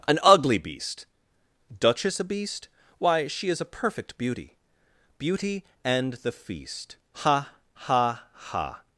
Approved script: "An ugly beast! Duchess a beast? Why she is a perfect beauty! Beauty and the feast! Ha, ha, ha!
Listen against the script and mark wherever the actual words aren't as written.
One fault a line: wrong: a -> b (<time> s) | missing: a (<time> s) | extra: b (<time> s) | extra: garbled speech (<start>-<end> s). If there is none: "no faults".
no faults